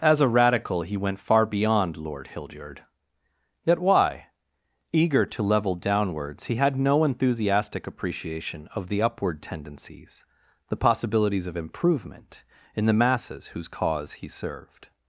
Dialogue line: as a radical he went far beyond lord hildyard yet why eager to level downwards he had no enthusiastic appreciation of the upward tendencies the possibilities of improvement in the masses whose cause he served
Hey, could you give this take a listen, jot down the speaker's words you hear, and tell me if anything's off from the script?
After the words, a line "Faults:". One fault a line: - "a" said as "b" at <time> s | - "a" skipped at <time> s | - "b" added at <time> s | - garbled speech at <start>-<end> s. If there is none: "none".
as a radical he went far beyond lord hildyard yet why eager to level downwards he had no enthusiastic appreciation of the upward tendencies the possibilities of improvement in the masses whose cause he served
Faults:
none